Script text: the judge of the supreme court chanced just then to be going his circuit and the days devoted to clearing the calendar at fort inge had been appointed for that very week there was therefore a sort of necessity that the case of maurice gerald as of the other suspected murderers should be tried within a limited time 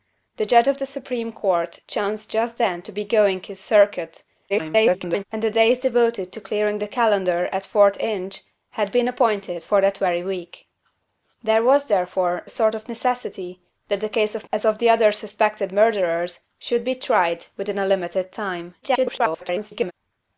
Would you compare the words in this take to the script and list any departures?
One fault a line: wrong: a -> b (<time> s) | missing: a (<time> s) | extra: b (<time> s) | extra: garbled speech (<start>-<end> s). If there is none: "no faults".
extra: garbled speech (4.5-5.2 s)
missing: maurice gerald (14.5 s)
extra: garbled speech (18.8-19.9 s)